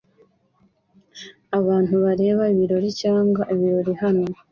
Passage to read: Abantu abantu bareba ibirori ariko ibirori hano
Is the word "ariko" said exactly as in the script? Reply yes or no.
no